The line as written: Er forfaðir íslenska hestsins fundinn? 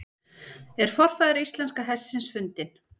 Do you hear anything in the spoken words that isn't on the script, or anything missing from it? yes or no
no